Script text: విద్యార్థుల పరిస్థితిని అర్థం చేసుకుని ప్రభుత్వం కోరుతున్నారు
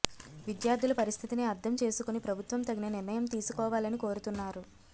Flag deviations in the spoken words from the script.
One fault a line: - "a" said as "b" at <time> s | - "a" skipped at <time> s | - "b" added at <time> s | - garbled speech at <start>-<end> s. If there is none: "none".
- "తగిన నిర్ణయం తీసుకోవాలని" added at 2.6 s